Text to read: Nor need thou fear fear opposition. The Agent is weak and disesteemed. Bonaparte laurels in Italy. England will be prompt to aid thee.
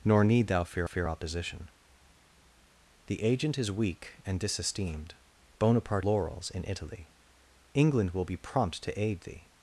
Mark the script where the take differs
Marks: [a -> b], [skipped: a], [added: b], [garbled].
Nor need thou fear fear opposition. The Agent is weak and disesteemed. Bonaparte laurels in Italy. England will be prompt to aid thee.